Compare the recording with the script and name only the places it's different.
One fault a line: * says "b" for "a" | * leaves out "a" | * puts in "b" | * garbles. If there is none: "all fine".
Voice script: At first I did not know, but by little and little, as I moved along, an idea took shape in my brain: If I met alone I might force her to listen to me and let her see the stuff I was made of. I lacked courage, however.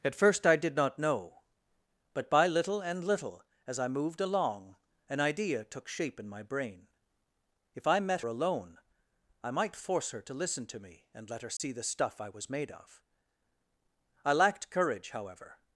all fine